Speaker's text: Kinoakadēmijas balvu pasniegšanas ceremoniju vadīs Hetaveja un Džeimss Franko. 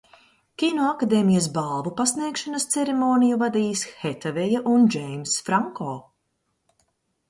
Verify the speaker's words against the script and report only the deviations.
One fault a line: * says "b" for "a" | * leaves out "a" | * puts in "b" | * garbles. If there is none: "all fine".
all fine